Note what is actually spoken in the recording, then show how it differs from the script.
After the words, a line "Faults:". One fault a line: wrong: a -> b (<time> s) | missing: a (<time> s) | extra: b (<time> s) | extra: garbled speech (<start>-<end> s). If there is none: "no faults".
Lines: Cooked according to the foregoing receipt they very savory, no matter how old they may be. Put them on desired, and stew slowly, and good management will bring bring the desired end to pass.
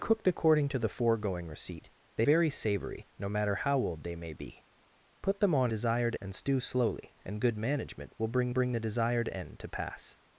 Cooked according to the foregoing receipt they very savory, no matter how old they may be. Put them on desired, and stew slowly, and good management will bring bring the desired end to pass.
Faults:
no faults